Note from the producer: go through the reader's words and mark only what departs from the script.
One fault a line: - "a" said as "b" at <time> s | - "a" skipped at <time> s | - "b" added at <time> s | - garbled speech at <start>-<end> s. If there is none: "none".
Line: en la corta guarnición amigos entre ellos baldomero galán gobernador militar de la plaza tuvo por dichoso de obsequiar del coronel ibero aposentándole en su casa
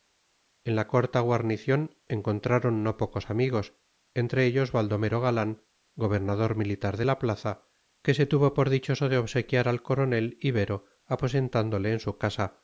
- "encontraron no pocos" added at 2.1 s
- "que se" added at 8.0 s
- "del" said as "al" at 9.7 s